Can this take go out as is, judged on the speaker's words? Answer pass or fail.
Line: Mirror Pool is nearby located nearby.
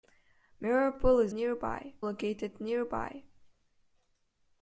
pass